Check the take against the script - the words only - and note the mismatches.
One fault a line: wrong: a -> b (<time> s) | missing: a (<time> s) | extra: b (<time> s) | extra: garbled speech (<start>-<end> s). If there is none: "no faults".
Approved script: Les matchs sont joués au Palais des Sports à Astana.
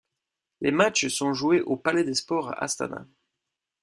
no faults